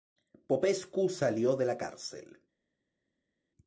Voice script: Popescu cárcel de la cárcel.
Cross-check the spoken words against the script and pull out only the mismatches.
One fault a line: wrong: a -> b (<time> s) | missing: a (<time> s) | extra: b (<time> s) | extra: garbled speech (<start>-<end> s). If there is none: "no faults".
wrong: cárcel -> salió (1.1 s)